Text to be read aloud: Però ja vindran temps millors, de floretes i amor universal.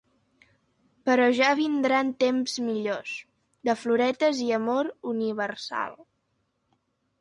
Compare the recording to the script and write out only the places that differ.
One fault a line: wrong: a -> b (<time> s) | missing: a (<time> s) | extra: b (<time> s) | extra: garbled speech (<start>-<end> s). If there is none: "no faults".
no faults